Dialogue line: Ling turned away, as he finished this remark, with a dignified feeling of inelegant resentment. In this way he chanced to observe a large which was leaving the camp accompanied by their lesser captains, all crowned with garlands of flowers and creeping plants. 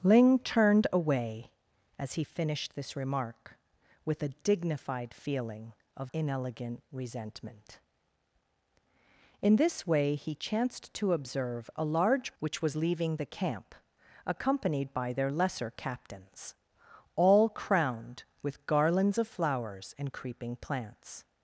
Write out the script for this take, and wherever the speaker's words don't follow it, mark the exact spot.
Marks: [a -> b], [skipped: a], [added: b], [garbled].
Ling turned away, as he finished this remark, with a dignified feeling of inelegant resentment. In this way he chanced to observe a large which was leaving the camp accompanied by their lesser captains, all crowned with garlands of flowers and creeping plants.